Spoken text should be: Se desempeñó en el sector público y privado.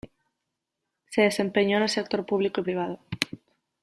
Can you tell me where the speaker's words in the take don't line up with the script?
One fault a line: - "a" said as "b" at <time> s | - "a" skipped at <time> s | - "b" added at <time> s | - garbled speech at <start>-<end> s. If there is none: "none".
none